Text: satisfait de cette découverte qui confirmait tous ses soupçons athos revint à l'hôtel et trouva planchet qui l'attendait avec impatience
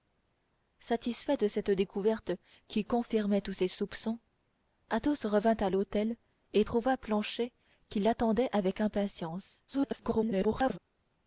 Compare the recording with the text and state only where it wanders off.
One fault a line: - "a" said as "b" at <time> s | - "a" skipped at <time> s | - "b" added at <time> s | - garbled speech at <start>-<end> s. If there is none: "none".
- garbled speech at 9.7-10.8 s